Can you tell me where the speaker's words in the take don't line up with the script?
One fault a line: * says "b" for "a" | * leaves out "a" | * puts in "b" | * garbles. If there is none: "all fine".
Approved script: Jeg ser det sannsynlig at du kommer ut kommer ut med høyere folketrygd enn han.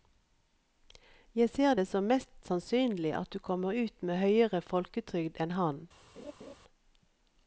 * puts in "som mest"
* leaves out "kommer ut"